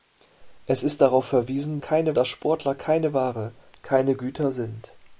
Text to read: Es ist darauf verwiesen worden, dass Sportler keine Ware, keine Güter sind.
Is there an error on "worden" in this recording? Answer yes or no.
yes